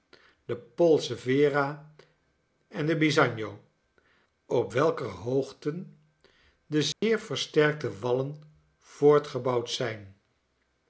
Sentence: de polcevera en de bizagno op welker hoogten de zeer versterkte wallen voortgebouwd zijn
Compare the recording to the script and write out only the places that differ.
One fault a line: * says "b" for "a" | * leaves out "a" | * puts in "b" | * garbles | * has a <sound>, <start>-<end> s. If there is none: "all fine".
* has a dropout, 6.9-7.0 s